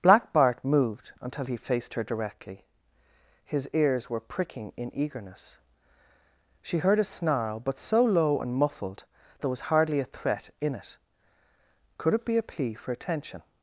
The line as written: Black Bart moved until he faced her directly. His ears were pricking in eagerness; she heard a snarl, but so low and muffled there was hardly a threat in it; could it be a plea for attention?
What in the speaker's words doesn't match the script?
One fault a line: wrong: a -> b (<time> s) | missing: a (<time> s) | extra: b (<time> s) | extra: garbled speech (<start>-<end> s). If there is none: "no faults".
no faults